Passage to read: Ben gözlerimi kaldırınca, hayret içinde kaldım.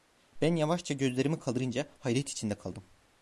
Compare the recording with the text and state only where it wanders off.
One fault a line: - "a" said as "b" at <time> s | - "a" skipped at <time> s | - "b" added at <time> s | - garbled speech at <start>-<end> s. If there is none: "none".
- "yavaşça" added at 0.6 s